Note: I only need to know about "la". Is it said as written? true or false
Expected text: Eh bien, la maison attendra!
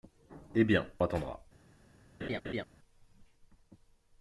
false